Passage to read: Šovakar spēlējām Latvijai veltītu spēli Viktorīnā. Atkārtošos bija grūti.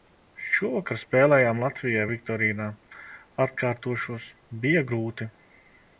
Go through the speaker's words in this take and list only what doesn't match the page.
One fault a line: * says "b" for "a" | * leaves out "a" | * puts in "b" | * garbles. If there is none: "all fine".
* leaves out "veltītu spēli"